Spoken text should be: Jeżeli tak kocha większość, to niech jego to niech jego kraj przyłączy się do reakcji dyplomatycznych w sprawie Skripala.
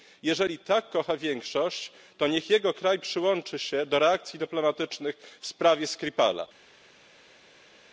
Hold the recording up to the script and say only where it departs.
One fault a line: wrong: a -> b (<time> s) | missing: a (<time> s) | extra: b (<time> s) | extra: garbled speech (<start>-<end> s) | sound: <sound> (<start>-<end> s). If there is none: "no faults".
missing: to niech jego (2.7 s)